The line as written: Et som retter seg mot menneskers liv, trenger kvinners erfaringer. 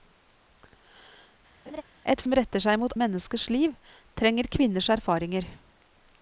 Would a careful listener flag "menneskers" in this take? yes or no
no